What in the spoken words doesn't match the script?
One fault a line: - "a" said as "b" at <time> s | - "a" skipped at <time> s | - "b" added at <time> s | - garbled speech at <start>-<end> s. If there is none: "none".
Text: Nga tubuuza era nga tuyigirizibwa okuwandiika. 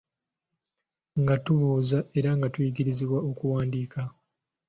none